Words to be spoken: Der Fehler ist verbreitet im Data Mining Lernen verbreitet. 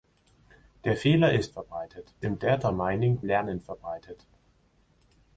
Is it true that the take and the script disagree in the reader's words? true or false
false